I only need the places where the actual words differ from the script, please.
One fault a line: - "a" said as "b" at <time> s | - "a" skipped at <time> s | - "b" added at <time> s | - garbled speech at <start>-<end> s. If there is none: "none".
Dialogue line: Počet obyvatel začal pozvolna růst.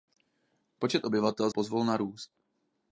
- "začal" skipped at 1.5 s